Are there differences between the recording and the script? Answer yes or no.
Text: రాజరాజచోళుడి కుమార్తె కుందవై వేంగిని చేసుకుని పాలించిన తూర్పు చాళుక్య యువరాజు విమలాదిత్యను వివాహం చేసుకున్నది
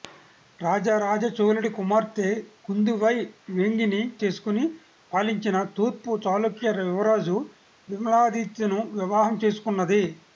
no